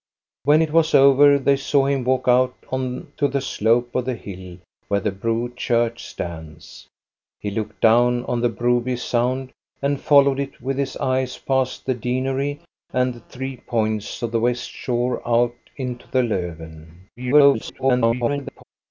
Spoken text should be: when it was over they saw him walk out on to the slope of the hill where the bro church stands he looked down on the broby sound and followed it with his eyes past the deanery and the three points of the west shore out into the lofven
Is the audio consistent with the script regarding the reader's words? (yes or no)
no